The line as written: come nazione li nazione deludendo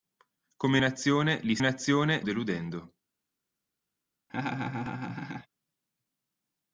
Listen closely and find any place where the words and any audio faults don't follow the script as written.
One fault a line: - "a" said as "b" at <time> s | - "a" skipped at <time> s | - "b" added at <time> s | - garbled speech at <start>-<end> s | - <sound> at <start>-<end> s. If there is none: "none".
- laugh at 4.3-5.5 s